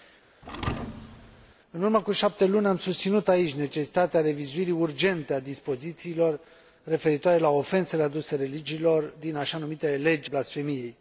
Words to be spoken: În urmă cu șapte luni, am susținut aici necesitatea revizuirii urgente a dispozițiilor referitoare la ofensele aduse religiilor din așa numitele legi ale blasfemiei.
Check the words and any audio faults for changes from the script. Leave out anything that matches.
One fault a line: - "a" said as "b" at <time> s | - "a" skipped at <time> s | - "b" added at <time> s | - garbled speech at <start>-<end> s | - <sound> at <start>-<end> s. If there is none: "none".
- thud at 0.4-1.5 s
- "ale" skipped at 10.3 s